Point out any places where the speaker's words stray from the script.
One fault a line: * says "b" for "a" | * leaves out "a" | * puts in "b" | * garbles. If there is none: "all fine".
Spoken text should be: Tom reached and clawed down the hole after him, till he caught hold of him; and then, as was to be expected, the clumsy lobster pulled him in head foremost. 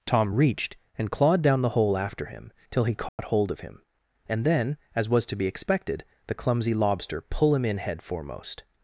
* says "pull" for "pulled"